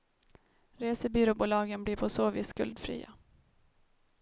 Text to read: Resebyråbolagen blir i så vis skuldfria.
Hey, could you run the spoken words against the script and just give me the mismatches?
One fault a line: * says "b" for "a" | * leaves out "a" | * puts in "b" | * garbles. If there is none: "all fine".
* says "på" for "i"